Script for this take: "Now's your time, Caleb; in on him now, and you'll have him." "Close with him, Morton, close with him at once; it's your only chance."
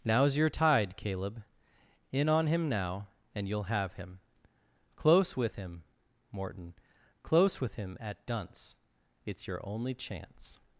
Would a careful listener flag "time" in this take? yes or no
yes